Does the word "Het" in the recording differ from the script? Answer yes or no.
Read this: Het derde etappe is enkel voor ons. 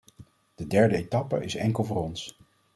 yes